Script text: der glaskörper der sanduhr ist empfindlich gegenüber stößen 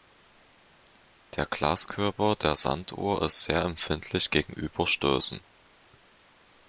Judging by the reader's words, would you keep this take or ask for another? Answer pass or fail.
fail